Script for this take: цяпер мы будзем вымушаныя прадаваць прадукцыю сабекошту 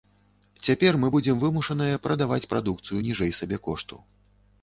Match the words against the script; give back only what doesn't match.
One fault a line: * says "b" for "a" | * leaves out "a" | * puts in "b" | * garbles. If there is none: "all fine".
* puts in "ніжэй"